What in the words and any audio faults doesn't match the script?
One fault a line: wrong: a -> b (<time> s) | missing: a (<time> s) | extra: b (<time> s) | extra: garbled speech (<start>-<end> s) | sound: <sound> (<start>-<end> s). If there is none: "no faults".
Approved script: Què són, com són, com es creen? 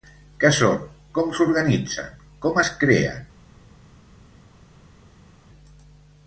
wrong: són -> s'organitzen (1.4 s)